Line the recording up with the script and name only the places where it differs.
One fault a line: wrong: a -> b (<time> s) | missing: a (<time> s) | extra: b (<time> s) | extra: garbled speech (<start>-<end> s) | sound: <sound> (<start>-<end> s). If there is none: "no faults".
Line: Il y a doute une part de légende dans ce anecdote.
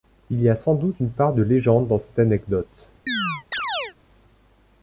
extra: sans (0.6 s)
wrong: ce -> cette (2.0 s)
sound: chirp (3.1-3.9 s)